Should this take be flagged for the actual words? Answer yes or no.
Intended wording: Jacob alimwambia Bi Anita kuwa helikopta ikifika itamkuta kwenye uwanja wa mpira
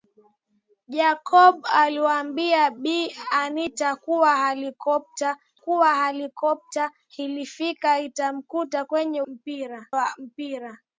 yes